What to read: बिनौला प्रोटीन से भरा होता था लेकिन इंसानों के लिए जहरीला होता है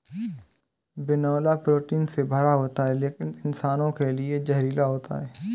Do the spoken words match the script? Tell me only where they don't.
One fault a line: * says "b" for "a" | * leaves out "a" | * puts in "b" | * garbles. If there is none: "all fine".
* says "है" for "था"